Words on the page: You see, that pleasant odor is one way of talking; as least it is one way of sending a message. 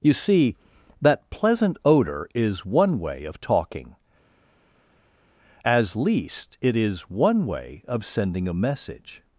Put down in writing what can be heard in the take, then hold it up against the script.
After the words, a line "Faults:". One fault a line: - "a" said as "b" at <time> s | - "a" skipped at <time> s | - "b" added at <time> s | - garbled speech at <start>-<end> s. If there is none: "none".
You see, that pleasant odor is one way of talking; as least it is one way of sending a message.
Faults:
none